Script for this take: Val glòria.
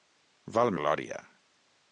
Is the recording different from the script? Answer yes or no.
no